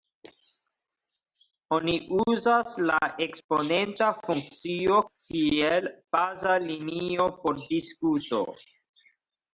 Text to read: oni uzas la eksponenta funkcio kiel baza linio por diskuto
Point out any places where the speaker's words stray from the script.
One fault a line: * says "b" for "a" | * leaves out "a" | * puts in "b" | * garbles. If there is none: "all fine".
all fine